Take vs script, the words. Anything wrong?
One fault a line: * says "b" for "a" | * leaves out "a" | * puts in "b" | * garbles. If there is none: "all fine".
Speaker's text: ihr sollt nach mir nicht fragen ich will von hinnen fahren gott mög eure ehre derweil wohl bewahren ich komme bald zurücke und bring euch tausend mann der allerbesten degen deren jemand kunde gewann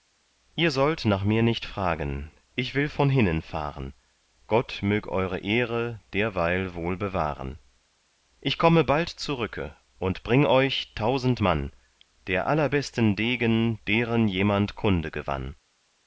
all fine